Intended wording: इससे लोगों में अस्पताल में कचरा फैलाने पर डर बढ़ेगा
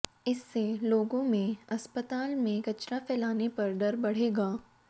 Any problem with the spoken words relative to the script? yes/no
no